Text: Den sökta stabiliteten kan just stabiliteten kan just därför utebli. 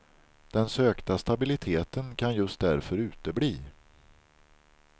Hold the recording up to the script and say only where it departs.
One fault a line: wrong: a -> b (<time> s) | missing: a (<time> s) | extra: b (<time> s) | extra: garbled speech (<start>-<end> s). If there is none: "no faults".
missing: stabiliteten kan just (2.6 s)